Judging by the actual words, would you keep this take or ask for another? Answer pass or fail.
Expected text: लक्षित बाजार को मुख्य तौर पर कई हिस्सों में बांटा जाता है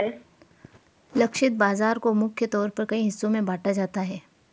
pass